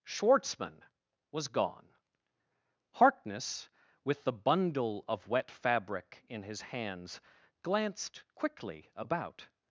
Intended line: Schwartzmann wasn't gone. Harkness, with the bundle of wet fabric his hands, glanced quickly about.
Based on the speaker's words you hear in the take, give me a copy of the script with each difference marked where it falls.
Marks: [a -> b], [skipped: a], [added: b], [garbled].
Schwartzmann [wasn't -> was] gone. Harkness, with the bundle of wet fabric [added: in] his hands, glanced quickly about.